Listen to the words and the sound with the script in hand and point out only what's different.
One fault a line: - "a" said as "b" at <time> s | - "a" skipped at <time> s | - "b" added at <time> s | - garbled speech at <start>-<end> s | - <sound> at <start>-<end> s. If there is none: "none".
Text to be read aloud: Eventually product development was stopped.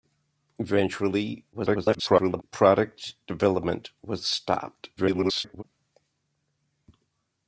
- garbled speech at 1.5-2.4 s
- garbled speech at 5.0-5.6 s